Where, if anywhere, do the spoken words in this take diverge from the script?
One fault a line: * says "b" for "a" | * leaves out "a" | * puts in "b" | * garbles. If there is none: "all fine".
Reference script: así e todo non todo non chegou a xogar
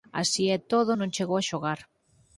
* leaves out "todo non"